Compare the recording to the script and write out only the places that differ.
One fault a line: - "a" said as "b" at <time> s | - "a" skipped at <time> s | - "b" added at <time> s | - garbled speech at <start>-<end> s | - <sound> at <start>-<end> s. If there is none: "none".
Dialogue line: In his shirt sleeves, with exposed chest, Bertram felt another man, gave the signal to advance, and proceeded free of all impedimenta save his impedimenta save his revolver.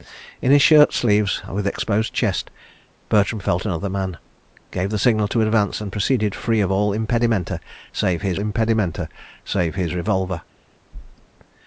none